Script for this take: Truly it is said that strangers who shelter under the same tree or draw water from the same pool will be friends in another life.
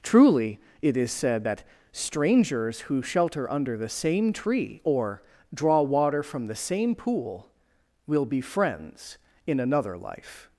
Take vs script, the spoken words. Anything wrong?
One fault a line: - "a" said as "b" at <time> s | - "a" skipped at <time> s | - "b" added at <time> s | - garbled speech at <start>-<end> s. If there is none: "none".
none